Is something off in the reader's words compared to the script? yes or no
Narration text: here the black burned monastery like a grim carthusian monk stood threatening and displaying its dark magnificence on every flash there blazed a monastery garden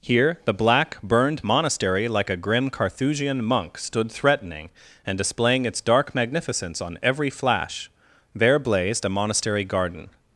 no